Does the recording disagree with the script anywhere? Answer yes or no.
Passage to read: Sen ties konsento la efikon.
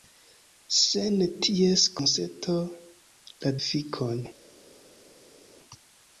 no